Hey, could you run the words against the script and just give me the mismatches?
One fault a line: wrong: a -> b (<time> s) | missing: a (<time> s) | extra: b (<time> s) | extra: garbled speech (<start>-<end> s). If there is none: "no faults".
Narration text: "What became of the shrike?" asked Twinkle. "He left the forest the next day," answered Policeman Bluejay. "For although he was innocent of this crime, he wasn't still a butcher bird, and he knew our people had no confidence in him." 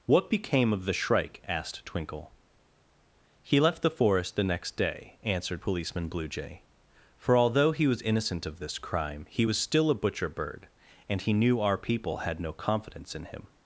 wrong: wasn't -> was (9.4 s)